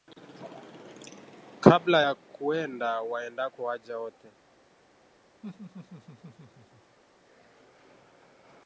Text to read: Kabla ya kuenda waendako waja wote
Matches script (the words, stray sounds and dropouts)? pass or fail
fail